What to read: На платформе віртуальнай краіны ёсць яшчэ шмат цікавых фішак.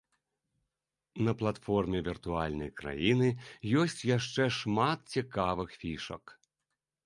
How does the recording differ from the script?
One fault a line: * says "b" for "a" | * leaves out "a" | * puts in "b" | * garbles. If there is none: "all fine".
all fine